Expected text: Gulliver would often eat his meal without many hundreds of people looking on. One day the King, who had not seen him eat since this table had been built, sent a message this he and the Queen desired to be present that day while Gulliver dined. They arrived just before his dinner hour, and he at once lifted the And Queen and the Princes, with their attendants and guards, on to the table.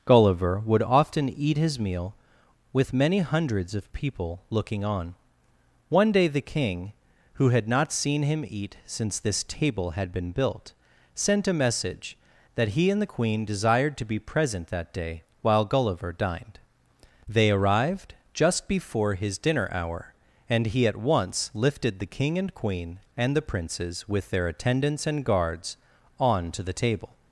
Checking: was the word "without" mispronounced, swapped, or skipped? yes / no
yes